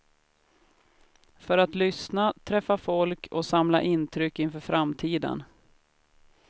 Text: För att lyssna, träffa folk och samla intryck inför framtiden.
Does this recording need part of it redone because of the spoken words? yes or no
no